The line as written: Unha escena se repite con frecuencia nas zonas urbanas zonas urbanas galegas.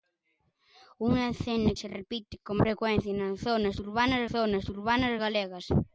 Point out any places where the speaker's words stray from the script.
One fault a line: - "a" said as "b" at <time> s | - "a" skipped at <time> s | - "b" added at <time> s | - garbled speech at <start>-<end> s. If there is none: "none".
none